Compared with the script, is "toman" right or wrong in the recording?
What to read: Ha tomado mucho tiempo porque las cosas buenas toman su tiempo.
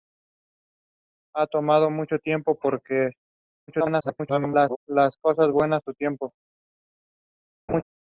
wrong